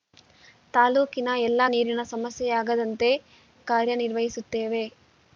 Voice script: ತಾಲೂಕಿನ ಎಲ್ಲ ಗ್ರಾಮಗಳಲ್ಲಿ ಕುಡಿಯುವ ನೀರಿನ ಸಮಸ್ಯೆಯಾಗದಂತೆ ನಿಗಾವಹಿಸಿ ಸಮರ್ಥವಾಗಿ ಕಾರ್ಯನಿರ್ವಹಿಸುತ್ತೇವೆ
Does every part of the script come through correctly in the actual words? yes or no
no